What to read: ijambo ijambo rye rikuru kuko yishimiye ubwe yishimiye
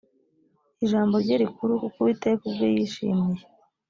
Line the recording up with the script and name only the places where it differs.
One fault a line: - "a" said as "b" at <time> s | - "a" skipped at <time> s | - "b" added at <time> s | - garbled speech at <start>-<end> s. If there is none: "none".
- "ijambo" skipped at 1.1 s
- "yishimiye" said as "uwiteka" at 2.0 s